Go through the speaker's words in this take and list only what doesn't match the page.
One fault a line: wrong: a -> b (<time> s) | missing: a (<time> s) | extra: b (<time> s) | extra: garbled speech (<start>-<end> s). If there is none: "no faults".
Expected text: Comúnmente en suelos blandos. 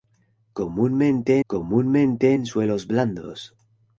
extra: comúnmente (1.5 s)